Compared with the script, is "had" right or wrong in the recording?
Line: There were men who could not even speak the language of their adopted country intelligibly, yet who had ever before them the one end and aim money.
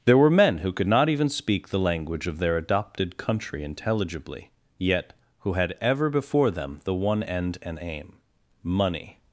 right